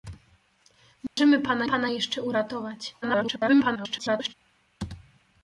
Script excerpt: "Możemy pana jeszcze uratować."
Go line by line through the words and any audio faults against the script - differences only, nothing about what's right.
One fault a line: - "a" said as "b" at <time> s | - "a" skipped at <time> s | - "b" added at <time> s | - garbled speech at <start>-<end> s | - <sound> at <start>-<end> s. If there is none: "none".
- dropout at 1.1-1.2 s
- "pana" added at 1.6 s
- garbled speech at 3.0-4.3 s